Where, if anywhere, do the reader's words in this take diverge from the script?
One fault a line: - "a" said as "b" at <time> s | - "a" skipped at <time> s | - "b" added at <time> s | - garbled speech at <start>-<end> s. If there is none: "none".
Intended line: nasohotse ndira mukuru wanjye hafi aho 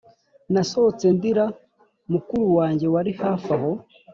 - "wari" added at 2.9 s